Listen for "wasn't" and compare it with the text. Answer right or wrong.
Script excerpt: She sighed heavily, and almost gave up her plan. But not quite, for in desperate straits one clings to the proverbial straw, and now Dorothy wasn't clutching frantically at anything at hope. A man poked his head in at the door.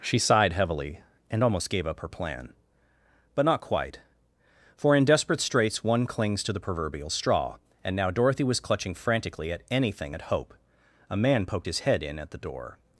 wrong